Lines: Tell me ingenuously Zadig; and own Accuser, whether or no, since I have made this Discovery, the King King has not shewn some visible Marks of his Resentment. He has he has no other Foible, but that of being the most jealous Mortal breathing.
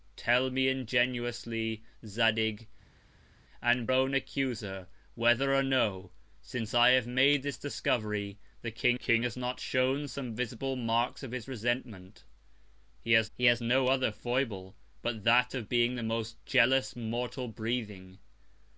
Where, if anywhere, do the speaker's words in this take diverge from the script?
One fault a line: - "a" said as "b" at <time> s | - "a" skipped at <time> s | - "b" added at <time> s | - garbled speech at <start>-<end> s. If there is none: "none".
none